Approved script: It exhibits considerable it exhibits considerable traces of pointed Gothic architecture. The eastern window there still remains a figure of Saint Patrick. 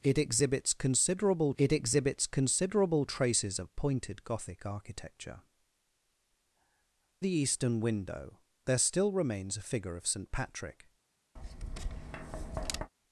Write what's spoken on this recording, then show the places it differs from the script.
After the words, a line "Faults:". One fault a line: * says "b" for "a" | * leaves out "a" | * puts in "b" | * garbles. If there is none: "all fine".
It exhibits considerable it exhibits considerable traces of pointed Gothic architecture. The eastern window there still remains a figure of Saint Patrick.
Faults:
all fine